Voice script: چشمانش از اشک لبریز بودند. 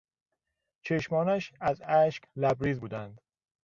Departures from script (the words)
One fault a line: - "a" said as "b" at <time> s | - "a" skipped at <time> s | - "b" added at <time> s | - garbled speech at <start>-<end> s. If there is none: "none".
none